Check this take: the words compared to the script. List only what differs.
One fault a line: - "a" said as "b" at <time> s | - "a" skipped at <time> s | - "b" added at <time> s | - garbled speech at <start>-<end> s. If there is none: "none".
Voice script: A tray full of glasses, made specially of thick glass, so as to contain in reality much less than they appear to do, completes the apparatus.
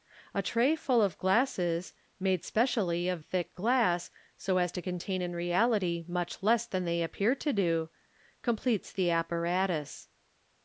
none